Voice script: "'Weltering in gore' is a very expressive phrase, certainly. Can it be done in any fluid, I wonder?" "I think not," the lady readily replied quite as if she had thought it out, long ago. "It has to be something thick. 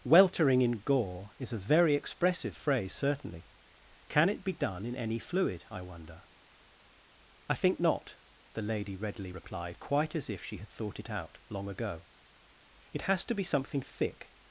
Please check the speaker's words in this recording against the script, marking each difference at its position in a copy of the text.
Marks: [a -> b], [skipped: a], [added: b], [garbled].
"'Weltering in gore' is a very expressive phrase, certainly. Can it be done in any fluid, I wonder?" "I think not," the lady readily replied quite as if she had thought it out, long ago. "It has to be something thick.